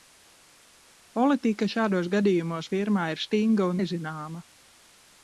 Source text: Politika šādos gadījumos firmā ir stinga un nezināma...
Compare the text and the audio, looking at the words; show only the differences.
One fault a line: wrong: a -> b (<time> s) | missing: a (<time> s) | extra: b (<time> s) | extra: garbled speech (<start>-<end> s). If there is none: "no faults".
no faults